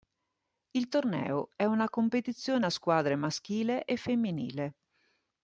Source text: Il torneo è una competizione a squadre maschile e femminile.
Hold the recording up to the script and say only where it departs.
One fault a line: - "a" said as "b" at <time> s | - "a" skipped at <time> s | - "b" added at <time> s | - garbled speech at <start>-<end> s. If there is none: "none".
none